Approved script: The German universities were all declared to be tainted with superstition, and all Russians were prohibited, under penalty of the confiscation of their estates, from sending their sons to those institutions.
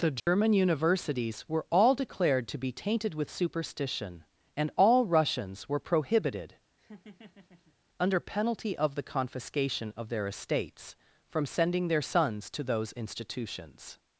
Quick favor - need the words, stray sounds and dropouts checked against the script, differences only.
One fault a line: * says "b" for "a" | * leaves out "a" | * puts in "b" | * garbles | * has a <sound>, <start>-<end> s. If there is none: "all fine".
* has a dropout, 0.2-0.3 s
* has a laugh, 6.8-7.8 s